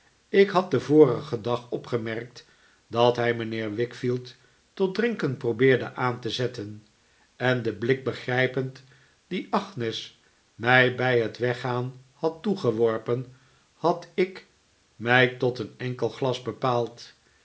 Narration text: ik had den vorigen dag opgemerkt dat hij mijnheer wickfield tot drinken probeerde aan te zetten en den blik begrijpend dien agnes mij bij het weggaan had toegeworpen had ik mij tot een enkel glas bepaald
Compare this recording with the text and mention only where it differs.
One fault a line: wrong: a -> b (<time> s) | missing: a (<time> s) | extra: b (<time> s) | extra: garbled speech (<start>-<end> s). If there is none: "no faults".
no faults